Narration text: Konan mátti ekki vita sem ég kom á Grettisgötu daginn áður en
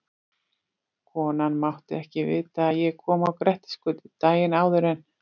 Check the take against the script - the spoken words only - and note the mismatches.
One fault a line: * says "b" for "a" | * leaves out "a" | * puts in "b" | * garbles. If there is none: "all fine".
* says "að" for "sem"